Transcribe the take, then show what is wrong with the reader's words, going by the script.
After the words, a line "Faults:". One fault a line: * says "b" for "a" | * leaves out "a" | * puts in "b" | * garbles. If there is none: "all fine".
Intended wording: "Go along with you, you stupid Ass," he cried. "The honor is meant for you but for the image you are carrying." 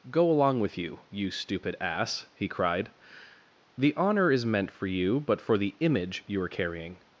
"Go along with you, you stupid Ass," he cried. "The honor is meant for you but for the image you are carrying."
Faults:
all fine